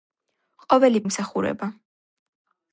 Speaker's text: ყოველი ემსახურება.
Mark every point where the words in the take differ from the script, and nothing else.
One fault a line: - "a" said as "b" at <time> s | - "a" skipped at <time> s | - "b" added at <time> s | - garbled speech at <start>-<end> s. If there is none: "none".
none